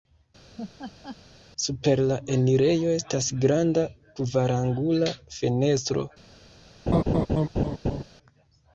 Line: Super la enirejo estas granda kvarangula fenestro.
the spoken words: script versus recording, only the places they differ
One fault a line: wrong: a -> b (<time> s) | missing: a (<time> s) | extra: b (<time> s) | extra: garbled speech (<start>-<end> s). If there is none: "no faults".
no faults